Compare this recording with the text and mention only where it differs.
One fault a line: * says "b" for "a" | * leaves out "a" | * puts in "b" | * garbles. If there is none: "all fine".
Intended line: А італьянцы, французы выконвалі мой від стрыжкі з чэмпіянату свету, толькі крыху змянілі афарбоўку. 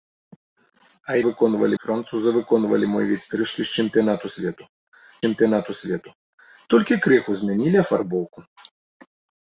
* says "выконвалі" for "італьянцы"
* puts in "чэмпіянату свету"